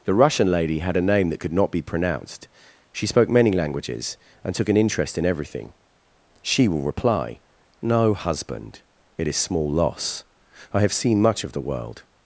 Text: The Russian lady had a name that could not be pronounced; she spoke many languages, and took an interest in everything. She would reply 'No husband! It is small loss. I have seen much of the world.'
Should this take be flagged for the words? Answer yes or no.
yes